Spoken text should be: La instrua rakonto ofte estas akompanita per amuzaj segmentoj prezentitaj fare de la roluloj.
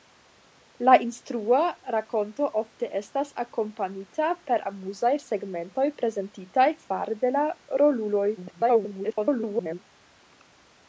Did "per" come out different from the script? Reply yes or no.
no